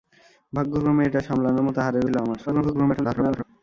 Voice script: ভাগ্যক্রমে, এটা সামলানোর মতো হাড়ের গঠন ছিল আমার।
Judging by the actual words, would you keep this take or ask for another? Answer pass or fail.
fail